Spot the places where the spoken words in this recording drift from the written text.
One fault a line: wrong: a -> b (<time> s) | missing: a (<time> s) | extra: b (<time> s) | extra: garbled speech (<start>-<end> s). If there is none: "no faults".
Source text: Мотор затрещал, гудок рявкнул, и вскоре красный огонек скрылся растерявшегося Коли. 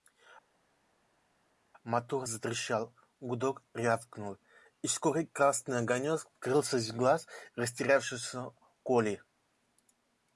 extra: из глаз (6.8 s)